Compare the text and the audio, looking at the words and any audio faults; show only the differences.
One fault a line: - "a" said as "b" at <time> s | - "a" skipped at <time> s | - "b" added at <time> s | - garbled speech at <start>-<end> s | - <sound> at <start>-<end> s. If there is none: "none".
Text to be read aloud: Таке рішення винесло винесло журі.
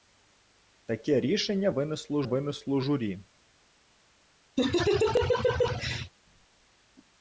- laugh at 4.6-6.1 s